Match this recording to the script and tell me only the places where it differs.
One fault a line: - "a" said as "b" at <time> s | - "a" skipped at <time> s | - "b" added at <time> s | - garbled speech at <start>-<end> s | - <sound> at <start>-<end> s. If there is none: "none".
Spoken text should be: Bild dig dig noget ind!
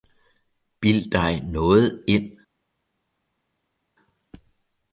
- "dig" skipped at 1.4 s